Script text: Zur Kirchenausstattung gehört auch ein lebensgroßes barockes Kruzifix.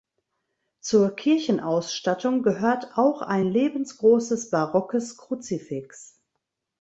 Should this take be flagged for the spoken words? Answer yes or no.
no